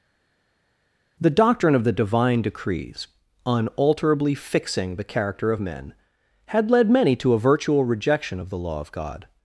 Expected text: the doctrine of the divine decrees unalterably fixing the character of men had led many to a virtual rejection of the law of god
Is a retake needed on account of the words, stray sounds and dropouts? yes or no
no